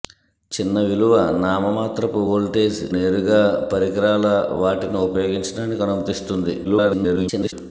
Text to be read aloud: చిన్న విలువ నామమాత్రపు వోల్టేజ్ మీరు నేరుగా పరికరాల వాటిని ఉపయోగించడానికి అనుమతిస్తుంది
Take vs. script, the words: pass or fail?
fail